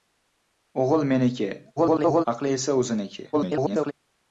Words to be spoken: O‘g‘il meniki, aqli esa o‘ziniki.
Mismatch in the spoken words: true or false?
true